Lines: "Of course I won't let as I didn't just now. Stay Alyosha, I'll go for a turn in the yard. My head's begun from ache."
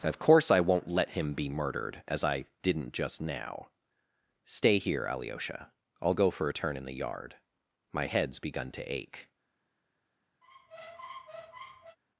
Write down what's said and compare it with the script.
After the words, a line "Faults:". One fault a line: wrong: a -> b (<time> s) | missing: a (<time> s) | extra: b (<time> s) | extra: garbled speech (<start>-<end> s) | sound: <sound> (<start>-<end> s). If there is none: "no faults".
"Of course I won't let him be murdered as I didn't just now. Stay here, Alyosha, I'll go for a turn in the yard. My head's begun to ache."
Faults:
extra: him be murdered (1.1 s)
extra: here (4.8 s)
wrong: from -> to (8.7 s)
sound: squeak (10.4-12.0 s)